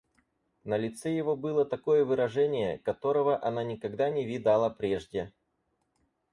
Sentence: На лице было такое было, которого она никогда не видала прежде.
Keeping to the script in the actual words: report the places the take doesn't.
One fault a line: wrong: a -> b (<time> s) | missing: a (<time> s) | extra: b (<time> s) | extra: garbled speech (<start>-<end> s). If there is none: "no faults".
extra: его (1.1 s)
wrong: было -> выражение (2.0 s)